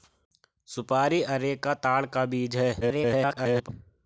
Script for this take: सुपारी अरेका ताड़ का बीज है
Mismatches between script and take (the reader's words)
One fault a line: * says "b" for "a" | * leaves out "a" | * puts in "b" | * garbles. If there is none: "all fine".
* garbles